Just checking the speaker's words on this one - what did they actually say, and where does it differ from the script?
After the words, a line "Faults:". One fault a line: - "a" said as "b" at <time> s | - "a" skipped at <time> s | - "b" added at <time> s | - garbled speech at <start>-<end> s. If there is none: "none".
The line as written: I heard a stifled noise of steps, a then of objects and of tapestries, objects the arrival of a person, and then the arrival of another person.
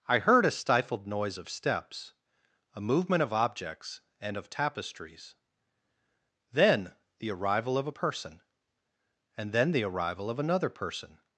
I heard a stifled noise of steps, a movement of objects and of tapestries, then the arrival of a person, and then the arrival of another person.
Faults:
- "then" said as "movement" at 2.8 s
- "objects" said as "then" at 6.5 s